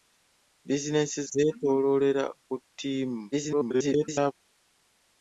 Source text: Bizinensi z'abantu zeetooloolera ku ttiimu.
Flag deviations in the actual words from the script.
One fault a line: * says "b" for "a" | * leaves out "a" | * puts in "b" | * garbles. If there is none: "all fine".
* leaves out "z'abantu"
* garbles